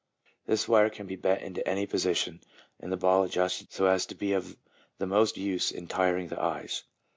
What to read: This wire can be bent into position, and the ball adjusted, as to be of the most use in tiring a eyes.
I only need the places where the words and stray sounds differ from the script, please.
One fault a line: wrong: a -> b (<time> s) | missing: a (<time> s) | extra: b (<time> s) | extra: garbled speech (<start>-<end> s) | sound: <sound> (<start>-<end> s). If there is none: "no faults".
extra: any (1.7 s)
extra: so (3.7 s)
wrong: a -> the (6.3 s)